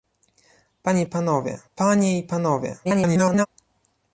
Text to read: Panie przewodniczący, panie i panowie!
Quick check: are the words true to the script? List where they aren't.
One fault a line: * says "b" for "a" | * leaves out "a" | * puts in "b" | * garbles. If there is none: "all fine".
* says "panowie" for "przewodniczący"
* garbles